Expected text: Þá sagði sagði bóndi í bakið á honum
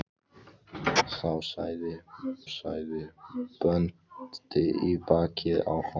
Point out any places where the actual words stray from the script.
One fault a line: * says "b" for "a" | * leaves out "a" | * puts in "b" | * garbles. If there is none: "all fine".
all fine